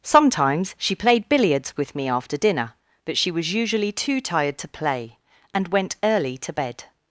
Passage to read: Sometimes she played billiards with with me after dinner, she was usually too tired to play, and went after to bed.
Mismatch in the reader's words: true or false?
true